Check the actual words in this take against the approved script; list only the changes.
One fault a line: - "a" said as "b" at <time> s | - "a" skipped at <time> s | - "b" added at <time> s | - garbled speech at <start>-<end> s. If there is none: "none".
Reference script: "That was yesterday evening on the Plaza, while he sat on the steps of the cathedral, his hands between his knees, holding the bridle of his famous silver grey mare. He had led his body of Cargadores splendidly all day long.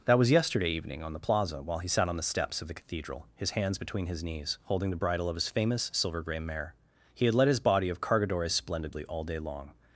none